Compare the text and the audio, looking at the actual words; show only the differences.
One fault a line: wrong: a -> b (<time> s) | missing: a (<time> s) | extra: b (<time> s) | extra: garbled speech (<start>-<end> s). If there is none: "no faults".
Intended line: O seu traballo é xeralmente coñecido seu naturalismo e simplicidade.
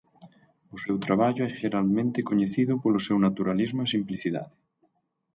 extra: polo (2.8 s)